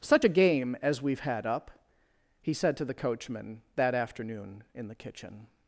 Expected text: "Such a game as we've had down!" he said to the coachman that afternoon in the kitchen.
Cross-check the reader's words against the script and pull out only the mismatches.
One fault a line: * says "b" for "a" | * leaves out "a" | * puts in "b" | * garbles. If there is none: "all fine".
* says "up" for "down"